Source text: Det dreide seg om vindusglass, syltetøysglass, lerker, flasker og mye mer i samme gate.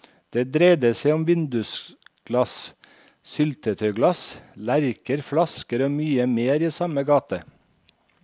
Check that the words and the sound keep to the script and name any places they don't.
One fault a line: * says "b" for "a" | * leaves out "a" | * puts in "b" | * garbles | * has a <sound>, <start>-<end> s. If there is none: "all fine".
all fine